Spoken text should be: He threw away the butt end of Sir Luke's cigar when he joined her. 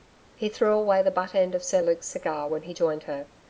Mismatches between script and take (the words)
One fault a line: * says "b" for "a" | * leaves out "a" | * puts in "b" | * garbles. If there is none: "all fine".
all fine